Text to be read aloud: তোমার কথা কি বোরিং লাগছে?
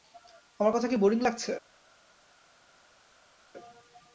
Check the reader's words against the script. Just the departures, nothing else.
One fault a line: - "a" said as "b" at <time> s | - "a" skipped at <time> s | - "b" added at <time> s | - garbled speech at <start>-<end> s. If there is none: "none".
- "তোমার" said as "আমার" at 0.6 s